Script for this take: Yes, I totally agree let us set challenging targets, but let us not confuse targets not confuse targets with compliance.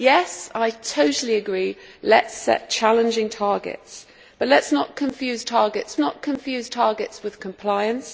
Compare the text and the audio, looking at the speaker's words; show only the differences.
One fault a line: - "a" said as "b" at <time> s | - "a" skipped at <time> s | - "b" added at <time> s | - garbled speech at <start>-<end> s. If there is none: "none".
none